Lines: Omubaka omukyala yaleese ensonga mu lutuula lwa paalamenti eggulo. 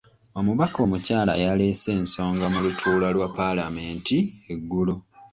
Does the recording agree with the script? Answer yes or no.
yes